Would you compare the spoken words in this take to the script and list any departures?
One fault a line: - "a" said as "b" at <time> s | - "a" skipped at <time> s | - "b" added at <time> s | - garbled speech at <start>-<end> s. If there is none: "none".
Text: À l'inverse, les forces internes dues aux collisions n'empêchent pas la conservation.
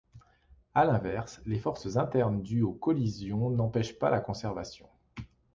none